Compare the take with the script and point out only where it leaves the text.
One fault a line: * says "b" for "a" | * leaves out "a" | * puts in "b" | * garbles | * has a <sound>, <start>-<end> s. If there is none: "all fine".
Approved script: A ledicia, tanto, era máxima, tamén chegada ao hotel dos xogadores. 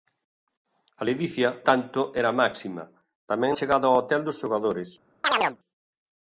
* has a chirp, 5.2-5.6 s